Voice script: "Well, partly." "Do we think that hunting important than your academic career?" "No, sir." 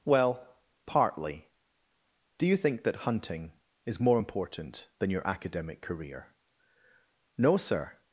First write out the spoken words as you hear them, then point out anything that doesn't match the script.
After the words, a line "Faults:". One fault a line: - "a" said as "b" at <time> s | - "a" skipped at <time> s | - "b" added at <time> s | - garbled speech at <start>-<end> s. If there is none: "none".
"Well, partly." "Do you think that hunting is more important than your academic career?" "No, sir."
Faults:
- "we" said as "you" at 2.5 s
- "is more" added at 3.9 s